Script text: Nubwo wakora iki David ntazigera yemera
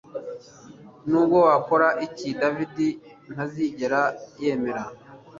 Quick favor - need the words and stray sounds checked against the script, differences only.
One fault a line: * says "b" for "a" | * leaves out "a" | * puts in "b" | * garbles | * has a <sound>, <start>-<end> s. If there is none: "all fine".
all fine